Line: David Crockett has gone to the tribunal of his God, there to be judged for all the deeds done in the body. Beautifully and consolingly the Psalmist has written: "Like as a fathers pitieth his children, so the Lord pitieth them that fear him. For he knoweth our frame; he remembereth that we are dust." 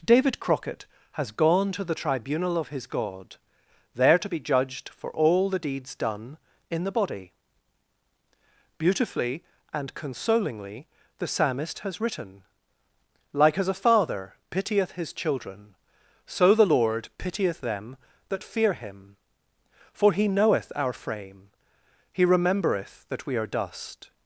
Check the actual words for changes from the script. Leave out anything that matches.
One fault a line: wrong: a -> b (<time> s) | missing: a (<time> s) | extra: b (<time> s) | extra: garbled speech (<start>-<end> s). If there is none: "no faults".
wrong: fathers -> father (13.8 s)